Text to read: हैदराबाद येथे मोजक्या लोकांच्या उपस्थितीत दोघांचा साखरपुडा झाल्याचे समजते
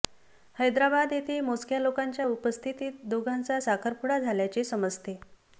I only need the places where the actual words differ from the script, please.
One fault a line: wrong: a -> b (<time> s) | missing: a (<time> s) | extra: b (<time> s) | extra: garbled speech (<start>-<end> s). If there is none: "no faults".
no faults